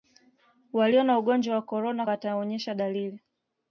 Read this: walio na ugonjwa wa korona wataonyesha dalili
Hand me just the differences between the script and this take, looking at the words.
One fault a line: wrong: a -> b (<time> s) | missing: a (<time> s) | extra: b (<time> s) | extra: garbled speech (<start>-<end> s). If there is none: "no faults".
no faults